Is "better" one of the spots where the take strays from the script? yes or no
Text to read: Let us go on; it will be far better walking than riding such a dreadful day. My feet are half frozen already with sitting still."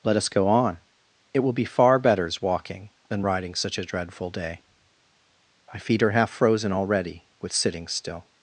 yes